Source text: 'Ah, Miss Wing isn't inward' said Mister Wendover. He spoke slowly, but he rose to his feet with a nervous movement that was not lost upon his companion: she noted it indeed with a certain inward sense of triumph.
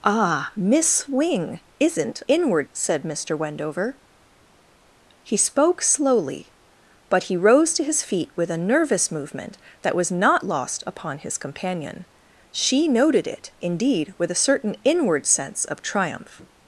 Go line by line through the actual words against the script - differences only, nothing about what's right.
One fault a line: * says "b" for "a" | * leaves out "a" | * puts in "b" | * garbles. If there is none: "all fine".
all fine